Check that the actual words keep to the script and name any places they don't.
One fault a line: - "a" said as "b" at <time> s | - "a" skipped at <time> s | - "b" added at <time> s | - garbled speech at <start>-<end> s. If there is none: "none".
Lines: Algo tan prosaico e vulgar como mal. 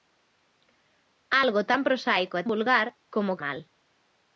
none